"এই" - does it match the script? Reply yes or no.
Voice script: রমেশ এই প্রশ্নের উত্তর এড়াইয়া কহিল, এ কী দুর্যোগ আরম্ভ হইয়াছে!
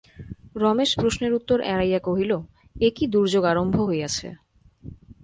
no